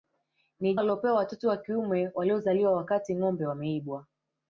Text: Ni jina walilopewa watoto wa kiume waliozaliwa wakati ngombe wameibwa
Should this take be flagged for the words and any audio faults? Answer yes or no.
yes